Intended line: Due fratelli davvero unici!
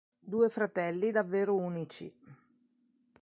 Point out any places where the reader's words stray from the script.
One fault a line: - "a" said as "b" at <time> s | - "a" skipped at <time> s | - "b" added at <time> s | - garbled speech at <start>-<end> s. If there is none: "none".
none